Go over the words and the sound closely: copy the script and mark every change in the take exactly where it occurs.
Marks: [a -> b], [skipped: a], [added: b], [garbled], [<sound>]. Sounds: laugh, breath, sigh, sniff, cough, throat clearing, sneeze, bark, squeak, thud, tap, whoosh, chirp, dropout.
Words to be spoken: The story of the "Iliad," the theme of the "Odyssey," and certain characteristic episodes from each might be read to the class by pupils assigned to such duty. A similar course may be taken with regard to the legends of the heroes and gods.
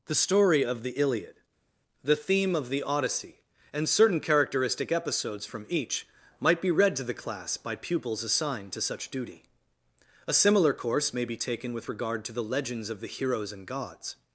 The story of the "Iliad," the theme of the "Odyssey," and certain characteristic episodes from each might be read to the class by pupils assigned to such duty. A similar course may be taken with regard to the legends of the heroes and gods.